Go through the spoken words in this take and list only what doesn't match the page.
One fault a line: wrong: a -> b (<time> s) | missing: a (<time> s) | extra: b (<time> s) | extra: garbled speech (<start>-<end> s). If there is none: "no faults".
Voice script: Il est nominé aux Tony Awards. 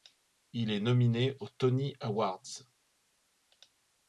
no faults